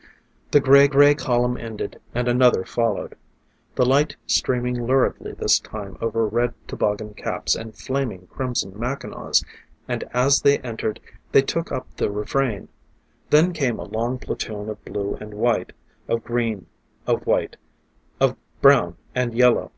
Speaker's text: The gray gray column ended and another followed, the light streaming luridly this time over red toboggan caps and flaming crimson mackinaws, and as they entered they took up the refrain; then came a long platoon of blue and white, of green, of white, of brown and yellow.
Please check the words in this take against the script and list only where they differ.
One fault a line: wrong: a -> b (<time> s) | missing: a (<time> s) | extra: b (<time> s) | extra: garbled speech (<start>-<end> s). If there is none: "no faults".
no faults